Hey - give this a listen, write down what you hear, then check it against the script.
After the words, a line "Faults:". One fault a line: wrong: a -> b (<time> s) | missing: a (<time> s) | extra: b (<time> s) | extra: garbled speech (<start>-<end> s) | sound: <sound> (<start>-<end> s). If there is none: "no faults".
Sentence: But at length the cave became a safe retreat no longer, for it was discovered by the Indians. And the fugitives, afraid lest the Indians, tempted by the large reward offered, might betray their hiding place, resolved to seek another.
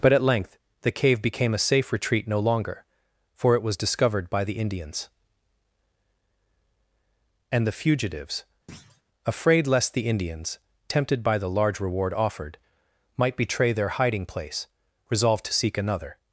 But at length the cave became a safe retreat no longer, for it was discovered by the Indians. And the fugitives, afraid lest the Indians, tempted by the large reward offered, might betray their hiding place, resolved to seek another.
Faults:
sound: thud (8.7-9.0 s)